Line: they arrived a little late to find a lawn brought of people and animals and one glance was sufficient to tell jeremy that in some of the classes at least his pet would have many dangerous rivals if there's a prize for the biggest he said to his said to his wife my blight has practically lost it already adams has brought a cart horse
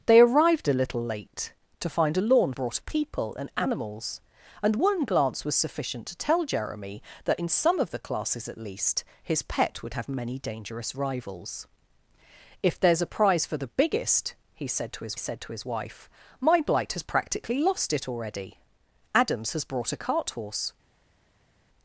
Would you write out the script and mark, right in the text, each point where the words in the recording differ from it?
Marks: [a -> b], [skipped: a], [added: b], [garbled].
they arrived a little late to find a lawn brought of people and animals and one glance was sufficient to tell jeremy that in some of the classes at least his pet would have many dangerous rivals if there's a prize for the biggest he said to his said to his wife my blight has practically lost it already adams has brought a cart horse